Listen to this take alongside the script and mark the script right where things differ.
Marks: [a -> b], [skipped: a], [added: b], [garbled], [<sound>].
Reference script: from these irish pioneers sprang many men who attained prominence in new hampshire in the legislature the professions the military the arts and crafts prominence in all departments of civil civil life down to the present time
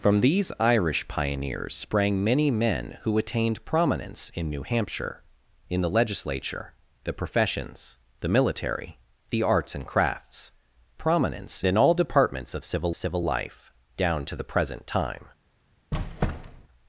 from these irish pioneers sprang many men who attained prominence in new hampshire in the legislature the professions the military the arts and crafts prominence in all departments of civil civil life down to the present time [squeak]